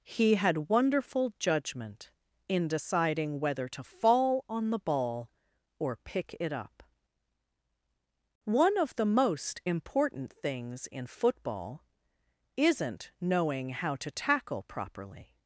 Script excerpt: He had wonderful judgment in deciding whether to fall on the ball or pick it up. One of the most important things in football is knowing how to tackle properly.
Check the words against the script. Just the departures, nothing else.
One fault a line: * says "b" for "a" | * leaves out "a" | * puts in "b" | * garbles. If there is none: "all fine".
* says "isn't" for "is"